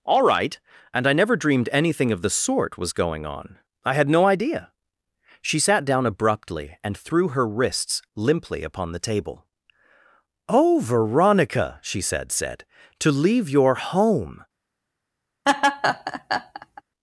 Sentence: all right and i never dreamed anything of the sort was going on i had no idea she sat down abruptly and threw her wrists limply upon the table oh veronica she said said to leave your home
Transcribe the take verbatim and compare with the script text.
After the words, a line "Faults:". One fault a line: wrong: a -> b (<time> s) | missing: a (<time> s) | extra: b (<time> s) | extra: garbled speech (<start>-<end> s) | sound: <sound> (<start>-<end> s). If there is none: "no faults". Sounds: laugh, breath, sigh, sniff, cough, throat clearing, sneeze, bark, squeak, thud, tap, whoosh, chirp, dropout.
all right and i never dreamed anything of the sort was going on i had no idea she sat down abruptly and threw her wrists limply upon the table oh veronica she said said to leave your home
Faults:
sound: laugh (15.5-16.8 s)